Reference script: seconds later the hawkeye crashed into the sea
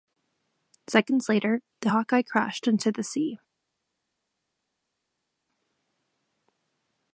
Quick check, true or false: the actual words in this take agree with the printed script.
true